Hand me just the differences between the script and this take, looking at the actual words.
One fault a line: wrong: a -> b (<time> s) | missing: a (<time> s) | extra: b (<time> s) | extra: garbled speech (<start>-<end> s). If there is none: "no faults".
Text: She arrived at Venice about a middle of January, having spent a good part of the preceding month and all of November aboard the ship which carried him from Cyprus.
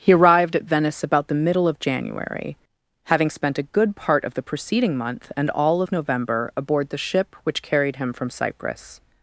wrong: She -> He (0.0 s)
wrong: a -> the (1.3 s)